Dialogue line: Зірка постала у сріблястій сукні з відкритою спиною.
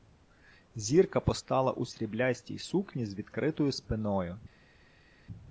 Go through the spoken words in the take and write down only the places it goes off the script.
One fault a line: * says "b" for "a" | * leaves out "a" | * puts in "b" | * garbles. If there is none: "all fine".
all fine